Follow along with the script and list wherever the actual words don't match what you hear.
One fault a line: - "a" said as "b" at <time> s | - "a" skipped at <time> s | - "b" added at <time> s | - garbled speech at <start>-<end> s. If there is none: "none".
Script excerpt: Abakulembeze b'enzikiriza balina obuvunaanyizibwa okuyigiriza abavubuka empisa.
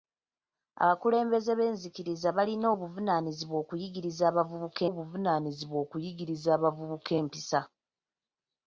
- "obuvunaanyizibwa okuyigiriza abavubuka" added at 4.9 s